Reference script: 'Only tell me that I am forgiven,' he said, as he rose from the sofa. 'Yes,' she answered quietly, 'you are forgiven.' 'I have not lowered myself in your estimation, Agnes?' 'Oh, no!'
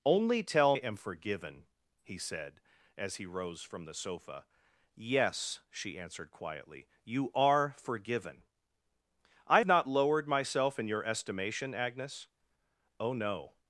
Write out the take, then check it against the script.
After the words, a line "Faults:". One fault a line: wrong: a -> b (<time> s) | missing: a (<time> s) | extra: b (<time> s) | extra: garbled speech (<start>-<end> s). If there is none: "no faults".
'Only tell am forgiven,' he said, as he rose from the sofa. 'Yes,' she answered quietly, 'you are forgiven.' 'I not lowered myself in your estimation, Agnes?' 'Oh, no!'
Faults:
missing: me that I (0.8 s)
missing: have (9.6 s)